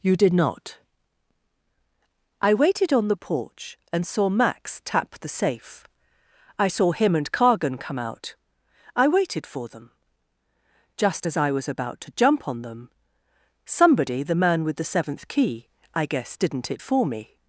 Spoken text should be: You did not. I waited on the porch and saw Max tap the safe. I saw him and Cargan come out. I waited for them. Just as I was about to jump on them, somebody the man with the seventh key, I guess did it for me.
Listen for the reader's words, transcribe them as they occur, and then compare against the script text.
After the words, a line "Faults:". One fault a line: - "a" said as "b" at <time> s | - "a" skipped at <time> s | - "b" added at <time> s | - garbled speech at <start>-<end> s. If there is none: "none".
You did not. I waited on the porch and saw Max tap the safe. I saw him and Cargan come out. I waited for them. Just as I was about to jump on them, somebody the man with the seventh key, I guess didn't it for me.
Faults:
- "did" said as "didn't" at 16.3 s